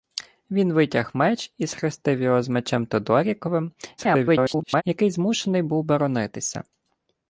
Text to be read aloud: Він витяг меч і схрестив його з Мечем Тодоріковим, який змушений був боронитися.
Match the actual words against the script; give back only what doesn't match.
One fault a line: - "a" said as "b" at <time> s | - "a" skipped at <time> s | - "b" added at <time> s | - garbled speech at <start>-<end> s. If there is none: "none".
- garbled speech at 4.0-4.8 s